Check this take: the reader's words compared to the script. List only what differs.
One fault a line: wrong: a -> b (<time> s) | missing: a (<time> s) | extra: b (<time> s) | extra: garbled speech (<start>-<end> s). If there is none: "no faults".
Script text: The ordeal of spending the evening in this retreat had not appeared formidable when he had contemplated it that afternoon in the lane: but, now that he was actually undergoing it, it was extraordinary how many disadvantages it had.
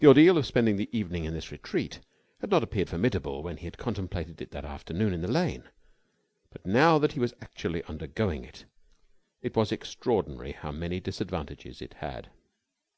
no faults